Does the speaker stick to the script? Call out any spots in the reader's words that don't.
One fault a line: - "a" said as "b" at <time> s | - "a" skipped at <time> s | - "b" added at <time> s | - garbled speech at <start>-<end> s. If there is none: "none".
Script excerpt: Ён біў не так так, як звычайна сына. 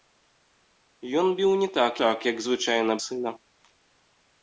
none